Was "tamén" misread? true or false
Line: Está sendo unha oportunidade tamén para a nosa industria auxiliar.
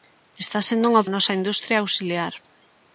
true